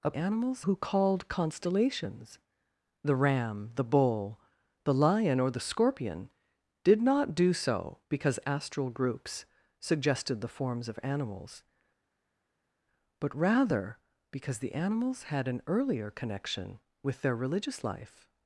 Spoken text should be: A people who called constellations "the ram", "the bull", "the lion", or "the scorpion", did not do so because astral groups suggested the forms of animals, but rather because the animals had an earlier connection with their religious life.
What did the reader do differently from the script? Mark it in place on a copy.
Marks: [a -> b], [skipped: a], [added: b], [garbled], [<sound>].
A [people -> animals] who called constellations "the ram", "the bull", "the lion", or "the scorpion", did not do so because astral groups suggested the forms of animals, but rather because the animals had an earlier connection with their religious life.